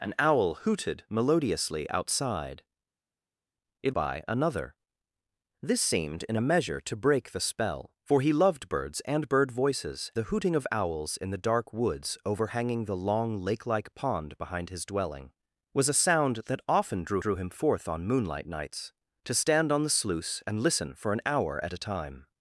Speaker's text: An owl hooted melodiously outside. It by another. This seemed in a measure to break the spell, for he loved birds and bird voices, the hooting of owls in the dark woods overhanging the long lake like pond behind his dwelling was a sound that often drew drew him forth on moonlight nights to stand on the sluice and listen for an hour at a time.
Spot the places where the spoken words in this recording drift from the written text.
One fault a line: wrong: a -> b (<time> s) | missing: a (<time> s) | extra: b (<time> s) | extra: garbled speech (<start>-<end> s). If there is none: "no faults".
no faults